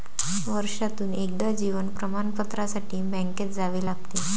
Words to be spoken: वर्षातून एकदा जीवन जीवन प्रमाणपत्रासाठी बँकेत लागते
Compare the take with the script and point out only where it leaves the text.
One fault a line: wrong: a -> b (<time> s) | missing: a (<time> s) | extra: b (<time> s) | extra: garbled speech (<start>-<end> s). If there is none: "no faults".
missing: जीवन (1.9 s)
extra: जावे (3.5 s)